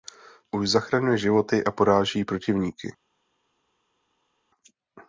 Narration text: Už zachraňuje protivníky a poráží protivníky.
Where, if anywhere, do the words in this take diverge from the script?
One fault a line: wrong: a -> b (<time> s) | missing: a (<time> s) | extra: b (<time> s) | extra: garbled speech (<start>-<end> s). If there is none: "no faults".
wrong: protivníky -> životy (1.2 s)